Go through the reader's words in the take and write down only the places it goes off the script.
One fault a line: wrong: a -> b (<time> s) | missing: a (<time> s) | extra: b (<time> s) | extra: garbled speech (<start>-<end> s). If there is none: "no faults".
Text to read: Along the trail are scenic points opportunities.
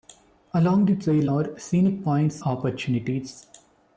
no faults